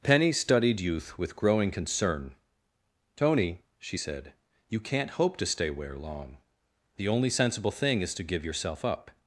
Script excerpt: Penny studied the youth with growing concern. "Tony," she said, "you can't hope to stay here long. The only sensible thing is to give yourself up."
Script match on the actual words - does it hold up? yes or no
no